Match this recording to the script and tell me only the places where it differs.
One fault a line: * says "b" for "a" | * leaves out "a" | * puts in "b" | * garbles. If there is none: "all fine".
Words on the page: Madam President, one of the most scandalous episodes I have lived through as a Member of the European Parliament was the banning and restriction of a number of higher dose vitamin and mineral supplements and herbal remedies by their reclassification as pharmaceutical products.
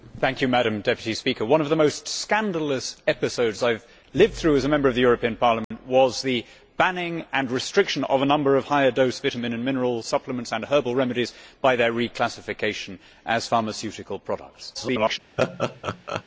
* garbles